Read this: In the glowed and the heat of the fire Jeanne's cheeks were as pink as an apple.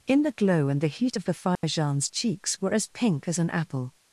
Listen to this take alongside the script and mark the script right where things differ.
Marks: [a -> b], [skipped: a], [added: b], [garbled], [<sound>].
In the [glowed -> glow] and the heat of the fire [dropout] Jeanne's cheeks were as pink as an apple.